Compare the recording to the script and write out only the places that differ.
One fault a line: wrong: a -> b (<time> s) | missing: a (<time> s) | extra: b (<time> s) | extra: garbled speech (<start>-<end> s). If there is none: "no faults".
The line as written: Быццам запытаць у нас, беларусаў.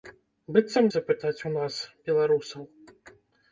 no faults